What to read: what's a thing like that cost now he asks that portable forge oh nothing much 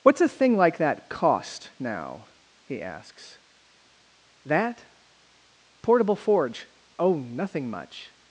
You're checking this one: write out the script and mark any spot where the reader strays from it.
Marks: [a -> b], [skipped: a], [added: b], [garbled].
what's a thing like that cost now he asks that portable forge oh nothing much